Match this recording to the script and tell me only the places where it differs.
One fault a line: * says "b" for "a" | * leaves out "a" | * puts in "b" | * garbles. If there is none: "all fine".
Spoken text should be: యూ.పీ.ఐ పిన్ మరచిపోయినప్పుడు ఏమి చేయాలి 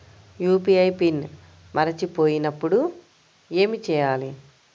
all fine